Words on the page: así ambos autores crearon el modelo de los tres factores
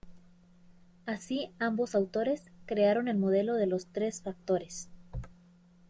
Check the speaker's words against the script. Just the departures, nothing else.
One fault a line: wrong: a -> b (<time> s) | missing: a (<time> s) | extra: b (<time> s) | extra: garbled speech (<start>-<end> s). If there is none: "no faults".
no faults